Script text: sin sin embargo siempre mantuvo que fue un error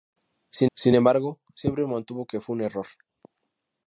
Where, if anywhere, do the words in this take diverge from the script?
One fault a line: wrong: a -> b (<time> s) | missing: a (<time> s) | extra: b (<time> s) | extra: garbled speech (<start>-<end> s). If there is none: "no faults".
no faults